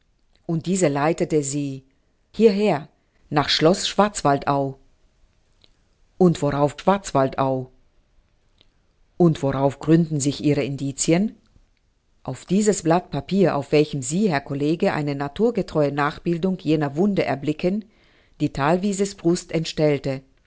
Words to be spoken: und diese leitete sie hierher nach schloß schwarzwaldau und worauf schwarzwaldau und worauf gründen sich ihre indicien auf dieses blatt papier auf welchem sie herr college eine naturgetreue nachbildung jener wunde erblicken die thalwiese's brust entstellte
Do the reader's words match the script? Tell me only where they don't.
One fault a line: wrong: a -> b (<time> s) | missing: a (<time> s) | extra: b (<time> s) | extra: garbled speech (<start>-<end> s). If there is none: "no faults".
no faults